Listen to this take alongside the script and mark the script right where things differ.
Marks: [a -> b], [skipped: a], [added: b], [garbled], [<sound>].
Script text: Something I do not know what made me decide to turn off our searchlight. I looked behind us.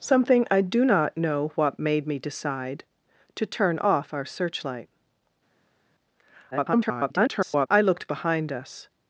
Something I do not know what made me decide to turn off our searchlight. [garbled] I looked behind us.